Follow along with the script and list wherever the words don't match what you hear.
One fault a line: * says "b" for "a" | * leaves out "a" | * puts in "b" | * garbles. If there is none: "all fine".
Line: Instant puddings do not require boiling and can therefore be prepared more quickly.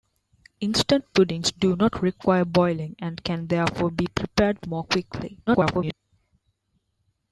* garbles